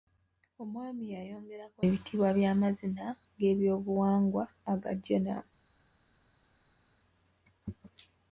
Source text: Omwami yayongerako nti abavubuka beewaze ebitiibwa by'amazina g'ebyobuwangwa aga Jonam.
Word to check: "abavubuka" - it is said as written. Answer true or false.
false